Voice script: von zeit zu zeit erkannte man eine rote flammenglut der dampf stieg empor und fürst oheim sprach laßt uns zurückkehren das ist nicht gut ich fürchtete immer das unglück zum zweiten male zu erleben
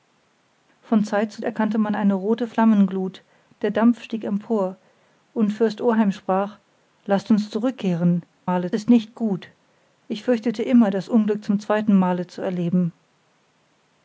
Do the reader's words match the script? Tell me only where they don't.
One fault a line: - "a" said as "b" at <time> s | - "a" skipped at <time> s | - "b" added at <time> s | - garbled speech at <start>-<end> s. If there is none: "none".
- "zeit" skipped at 1.4 s
- "das" said as "male" at 8.4 s